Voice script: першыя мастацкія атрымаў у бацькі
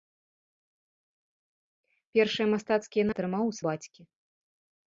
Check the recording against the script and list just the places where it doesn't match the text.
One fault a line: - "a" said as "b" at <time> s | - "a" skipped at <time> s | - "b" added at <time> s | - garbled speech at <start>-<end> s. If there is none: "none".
none